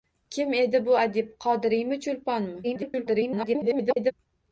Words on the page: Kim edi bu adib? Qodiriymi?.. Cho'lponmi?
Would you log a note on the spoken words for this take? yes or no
yes